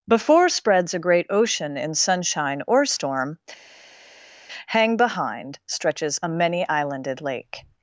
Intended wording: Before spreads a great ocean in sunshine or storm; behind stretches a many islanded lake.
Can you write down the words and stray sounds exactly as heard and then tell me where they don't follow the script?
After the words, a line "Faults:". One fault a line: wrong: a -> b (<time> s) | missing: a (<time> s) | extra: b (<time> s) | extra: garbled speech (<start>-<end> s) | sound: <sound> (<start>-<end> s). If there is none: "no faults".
Before spreads a great ocean in sunshine or storm; hang behind stretches a many islanded lake.
Faults:
extra: hang (4.7 s)